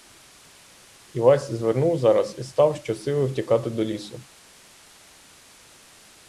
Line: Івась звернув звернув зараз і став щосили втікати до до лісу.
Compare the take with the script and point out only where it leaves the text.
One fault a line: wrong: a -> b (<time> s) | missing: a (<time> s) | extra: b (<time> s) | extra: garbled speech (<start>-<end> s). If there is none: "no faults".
missing: звернув (2.0 s)
missing: до (3.8 s)